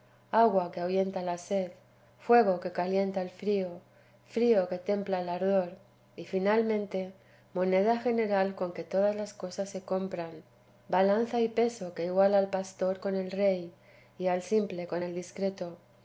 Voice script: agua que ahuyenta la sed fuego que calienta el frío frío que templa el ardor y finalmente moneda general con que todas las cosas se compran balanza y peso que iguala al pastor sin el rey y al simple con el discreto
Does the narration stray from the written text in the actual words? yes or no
yes